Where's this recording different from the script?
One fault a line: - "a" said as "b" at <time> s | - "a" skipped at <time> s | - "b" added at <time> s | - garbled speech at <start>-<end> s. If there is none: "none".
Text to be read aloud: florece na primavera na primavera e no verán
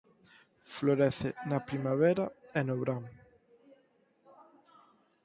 - "na primavera" skipped at 2.2 s